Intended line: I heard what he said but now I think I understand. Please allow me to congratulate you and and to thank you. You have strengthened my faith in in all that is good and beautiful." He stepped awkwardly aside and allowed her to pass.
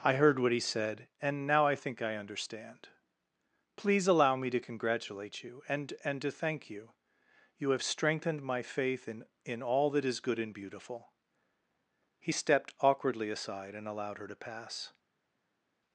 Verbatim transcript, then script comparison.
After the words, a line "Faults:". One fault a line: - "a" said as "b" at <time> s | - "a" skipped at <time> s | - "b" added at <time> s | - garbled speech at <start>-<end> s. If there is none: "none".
I heard what he said and now I think I understand. Please allow me to congratulate you and and to thank you. You have strengthened my faith in in all that is good and beautiful." He stepped awkwardly aside and allowed her to pass.
Faults:
- "but" said as "and" at 1.2 s